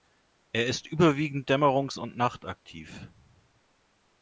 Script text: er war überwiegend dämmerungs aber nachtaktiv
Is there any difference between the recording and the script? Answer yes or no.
yes